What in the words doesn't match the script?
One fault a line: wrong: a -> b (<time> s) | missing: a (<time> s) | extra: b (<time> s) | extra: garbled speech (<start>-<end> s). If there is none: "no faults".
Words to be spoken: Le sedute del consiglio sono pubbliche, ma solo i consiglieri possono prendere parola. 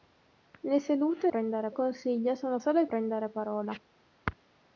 wrong: del -> prendere (1.3 s)
missing: pubbliche ma (2.6 s)
missing: consiglieri possono (2.9 s)